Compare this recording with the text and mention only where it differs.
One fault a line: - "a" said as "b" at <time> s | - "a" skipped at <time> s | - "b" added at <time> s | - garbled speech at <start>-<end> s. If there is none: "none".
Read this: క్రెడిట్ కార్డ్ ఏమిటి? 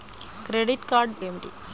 none